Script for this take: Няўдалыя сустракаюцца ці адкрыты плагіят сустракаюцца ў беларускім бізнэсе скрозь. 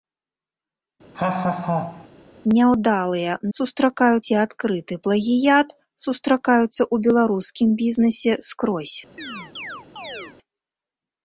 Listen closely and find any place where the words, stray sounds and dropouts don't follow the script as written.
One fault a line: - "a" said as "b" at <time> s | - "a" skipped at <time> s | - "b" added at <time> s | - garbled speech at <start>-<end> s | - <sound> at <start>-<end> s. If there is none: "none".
- laugh at 1.1-2.1 s
- chirp at 9.2-10.4 s